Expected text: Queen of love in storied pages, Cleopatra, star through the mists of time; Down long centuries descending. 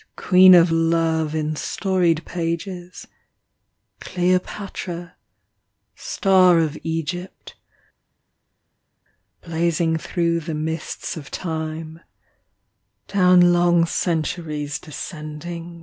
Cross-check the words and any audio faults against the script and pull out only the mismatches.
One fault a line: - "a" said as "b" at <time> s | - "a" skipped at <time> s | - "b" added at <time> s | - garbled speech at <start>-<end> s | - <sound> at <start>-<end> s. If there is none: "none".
- "of Egypt blazing" added at 6.6 s